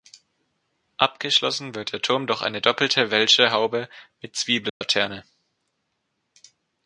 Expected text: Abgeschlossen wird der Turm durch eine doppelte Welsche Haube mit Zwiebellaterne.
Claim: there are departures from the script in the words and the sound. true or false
true